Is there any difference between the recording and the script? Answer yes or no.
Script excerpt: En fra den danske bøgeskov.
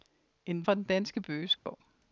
no